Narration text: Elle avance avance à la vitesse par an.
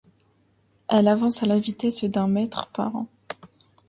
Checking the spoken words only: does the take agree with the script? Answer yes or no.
no